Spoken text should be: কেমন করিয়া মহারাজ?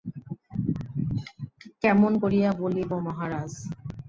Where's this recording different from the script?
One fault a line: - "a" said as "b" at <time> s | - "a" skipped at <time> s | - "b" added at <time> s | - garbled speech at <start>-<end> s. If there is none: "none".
- "বলিব" added at 2.6 s